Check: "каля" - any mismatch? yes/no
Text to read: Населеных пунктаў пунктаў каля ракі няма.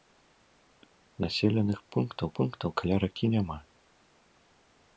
no